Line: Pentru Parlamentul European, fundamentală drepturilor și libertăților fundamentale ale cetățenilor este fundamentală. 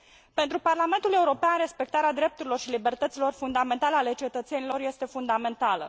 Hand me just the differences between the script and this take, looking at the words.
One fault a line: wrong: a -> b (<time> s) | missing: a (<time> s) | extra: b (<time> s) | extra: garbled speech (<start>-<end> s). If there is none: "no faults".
wrong: fundamentală -> respectarea (1.6 s)